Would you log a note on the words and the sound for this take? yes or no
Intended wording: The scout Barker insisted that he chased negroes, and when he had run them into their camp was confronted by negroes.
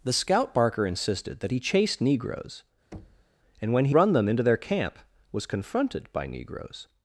yes